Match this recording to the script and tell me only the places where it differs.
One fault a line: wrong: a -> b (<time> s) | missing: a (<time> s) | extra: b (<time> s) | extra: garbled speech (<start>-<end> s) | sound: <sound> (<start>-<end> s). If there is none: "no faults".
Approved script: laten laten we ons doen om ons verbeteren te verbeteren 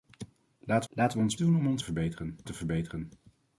no faults